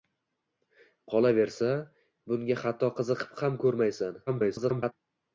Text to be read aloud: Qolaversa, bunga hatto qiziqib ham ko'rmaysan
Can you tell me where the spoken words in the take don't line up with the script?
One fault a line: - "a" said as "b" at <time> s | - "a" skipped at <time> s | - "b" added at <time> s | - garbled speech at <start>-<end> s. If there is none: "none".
- garbled speech at 4.3-4.9 s